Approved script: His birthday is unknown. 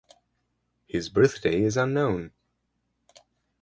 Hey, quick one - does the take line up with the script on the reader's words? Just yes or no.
yes